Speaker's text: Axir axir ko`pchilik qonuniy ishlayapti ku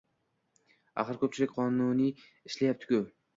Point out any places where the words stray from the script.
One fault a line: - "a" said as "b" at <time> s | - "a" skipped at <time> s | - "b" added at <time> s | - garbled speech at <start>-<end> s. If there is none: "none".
- "axir" skipped at 1.2 s